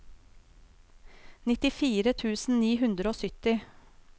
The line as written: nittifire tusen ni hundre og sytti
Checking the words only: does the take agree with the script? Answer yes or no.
yes